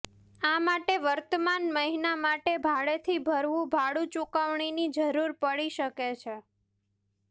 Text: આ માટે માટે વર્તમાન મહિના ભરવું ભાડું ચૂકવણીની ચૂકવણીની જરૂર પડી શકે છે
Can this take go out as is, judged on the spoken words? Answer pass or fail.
fail